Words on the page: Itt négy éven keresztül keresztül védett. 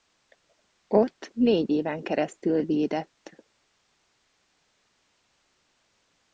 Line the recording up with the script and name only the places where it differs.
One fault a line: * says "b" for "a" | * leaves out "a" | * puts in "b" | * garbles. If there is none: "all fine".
* says "Ott" for "Itt"
* leaves out "keresztül"